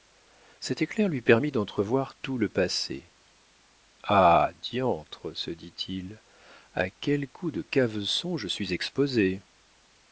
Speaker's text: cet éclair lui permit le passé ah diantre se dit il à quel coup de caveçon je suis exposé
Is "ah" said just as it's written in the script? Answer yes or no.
yes